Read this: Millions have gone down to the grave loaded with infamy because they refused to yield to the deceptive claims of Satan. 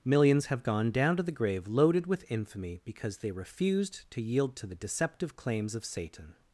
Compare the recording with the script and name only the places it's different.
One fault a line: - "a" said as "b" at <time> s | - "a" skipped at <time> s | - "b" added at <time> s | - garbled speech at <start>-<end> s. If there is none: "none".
none